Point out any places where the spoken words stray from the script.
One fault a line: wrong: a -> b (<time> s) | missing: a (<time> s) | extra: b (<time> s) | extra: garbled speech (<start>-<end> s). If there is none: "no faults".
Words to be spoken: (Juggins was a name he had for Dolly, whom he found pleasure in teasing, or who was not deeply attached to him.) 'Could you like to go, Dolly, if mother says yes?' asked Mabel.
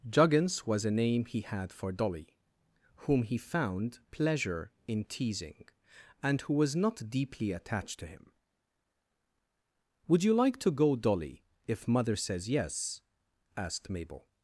wrong: or -> and (6.2 s)
wrong: Could -> Would (10.1 s)